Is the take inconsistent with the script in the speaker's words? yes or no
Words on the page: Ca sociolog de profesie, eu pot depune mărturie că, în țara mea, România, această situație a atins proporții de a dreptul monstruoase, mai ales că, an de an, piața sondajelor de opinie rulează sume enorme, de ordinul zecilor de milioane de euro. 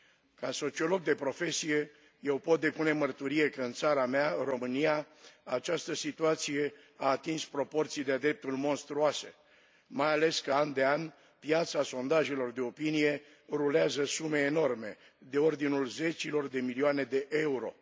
no